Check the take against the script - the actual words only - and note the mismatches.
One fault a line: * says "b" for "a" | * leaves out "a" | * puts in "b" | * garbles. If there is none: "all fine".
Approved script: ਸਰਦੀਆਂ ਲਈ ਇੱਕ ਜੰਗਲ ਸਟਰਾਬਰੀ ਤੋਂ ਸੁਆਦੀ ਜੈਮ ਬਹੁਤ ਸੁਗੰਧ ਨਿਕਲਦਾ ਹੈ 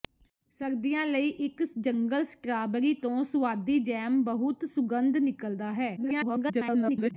* garbles